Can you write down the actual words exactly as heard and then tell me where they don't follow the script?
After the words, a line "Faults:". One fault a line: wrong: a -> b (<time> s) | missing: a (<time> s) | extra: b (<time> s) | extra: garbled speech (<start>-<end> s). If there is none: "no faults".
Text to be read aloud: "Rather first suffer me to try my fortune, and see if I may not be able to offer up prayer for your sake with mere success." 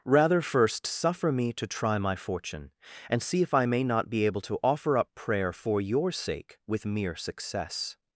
"Rather first suffer me to try my fortune, and see if I may not be able to offer up prayer for your sake with mere success."
Faults:
no faults